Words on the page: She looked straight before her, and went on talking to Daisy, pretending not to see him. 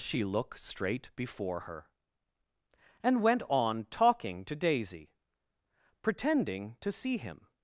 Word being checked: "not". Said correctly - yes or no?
no